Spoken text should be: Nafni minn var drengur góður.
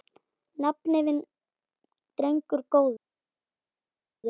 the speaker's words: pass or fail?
fail